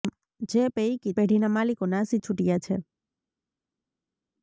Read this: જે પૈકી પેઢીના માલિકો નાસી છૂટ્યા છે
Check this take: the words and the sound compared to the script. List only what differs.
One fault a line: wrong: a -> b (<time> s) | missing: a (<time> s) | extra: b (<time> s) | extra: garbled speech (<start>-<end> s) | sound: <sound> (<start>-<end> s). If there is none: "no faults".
no faults